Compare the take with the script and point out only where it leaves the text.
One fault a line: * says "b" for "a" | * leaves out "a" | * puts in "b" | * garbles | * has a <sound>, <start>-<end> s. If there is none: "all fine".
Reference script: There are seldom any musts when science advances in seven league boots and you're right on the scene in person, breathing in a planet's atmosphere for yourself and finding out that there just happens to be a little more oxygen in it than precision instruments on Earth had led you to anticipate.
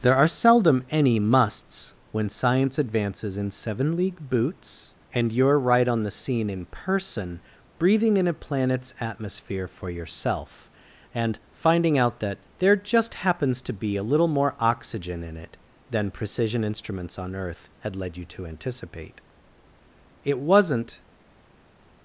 * puts in "It wasn't"